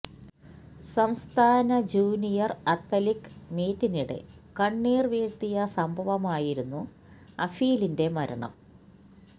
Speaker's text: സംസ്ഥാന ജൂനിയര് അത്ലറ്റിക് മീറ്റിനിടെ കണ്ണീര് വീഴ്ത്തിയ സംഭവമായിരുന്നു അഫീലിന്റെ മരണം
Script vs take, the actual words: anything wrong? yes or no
no